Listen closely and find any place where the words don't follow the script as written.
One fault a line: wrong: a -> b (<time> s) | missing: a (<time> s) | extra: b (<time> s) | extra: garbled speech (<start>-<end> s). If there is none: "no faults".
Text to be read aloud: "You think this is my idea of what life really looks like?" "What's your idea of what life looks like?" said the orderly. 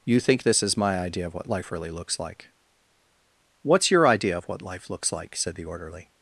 no faults